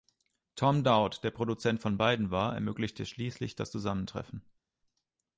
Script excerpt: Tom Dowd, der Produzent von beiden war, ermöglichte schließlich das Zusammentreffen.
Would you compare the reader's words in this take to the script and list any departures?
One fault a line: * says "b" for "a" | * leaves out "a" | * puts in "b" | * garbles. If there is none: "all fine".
all fine